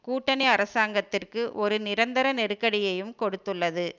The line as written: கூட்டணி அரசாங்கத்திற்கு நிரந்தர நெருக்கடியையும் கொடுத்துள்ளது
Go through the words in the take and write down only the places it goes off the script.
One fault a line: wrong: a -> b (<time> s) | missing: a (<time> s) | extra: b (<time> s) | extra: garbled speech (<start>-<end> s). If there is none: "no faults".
extra: ஒரு (1.5 s)